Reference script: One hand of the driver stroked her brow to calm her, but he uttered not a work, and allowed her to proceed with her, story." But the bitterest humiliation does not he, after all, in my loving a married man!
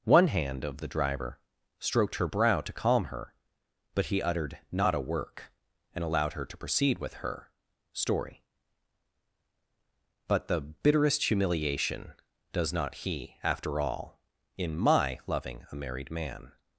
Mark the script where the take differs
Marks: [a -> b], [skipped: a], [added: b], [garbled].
One hand of the driver stroked her brow to calm her, but he uttered not a work, and allowed her to proceed with her, story." But the bitterest humiliation does not he, after all, in my loving a married man!